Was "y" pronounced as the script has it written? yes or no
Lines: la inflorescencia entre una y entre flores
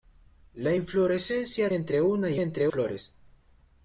yes